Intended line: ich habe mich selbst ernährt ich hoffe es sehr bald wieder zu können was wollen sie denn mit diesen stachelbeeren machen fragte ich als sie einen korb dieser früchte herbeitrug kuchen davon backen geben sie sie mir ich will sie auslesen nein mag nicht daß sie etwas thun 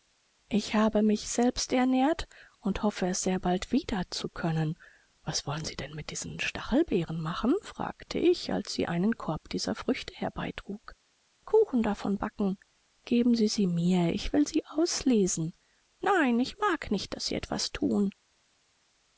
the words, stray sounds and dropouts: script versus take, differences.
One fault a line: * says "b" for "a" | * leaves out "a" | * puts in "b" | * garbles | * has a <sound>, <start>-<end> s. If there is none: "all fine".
* says "und" for "ich"
* puts in "ich"